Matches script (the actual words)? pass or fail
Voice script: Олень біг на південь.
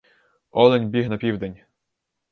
pass